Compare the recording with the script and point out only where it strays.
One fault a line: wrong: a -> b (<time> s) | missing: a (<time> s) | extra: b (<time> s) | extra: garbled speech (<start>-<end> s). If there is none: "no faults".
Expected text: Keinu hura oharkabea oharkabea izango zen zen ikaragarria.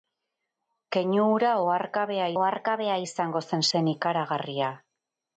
no faults